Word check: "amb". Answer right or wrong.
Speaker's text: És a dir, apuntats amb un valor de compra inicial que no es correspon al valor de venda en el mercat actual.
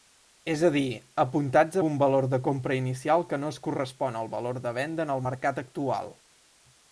wrong